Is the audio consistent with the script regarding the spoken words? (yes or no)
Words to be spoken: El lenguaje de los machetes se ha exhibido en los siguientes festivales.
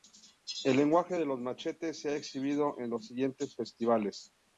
yes